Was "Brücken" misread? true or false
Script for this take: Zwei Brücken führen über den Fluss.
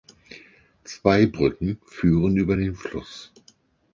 false